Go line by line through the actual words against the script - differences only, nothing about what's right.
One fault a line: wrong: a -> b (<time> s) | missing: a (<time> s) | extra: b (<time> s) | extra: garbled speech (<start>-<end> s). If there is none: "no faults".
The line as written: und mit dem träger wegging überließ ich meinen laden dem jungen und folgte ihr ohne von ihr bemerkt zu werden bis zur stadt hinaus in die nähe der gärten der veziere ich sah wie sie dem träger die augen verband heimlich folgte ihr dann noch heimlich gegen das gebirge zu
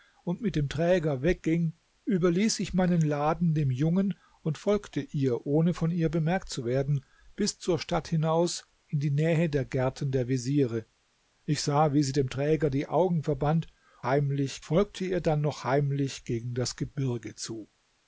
no faults